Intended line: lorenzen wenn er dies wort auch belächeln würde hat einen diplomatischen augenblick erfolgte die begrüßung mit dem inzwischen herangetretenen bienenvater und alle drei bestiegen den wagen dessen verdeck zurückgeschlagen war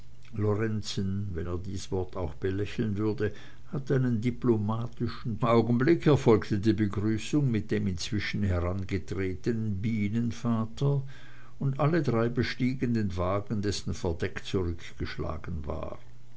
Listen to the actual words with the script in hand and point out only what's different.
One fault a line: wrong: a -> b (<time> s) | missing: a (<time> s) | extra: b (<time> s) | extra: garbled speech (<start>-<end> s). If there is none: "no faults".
no faults